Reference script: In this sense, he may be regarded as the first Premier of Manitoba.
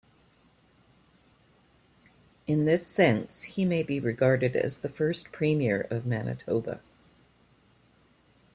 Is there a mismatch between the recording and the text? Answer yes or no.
no